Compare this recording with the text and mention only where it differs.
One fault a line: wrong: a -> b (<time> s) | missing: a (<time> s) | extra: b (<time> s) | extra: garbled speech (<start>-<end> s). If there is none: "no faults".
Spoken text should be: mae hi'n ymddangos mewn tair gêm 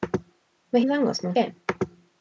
missing: hi'n (0.8 s)
missing: tair (1.4 s)